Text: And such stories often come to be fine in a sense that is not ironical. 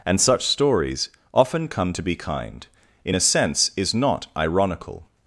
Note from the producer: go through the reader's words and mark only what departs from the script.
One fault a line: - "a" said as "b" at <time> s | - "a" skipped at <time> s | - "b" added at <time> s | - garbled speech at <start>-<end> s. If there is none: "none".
- "fine" said as "kind" at 2.2 s
- "that" skipped at 3.7 s